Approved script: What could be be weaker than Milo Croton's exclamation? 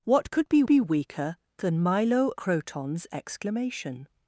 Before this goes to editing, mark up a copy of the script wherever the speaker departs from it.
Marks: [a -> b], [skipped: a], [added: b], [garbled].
What could be be weaker than Milo Croton's exclamation?